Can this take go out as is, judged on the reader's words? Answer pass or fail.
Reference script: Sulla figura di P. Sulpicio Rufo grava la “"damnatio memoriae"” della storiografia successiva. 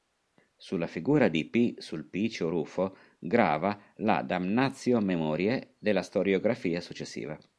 pass